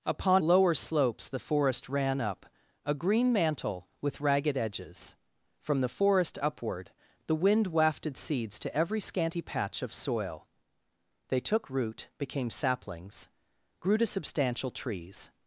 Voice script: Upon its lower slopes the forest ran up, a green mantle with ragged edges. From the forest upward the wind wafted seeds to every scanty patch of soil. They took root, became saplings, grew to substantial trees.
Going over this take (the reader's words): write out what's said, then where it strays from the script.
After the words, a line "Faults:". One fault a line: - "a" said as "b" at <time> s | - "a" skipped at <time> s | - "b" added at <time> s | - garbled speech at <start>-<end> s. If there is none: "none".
Upon lower slopes the forest ran up, a green mantle with ragged edges. From the forest upward the wind wafted seeds to every scanty patch of soil. They took root, became saplings, grew to substantial trees.
Faults:
- "its" skipped at 0.4 s